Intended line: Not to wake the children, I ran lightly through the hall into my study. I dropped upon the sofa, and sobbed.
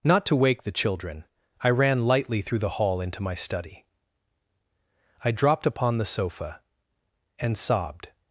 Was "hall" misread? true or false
false